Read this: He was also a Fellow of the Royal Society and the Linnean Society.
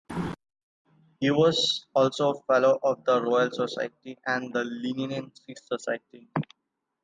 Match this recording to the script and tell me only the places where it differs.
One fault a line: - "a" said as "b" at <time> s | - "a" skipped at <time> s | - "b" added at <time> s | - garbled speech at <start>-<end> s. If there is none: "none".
none